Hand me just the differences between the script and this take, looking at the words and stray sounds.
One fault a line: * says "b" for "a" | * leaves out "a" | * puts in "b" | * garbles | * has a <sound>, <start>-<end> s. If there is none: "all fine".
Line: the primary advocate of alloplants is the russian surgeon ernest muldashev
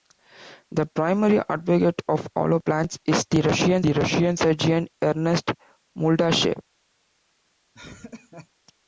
* puts in "the russian"
* has a laugh, 7.7-8.5 s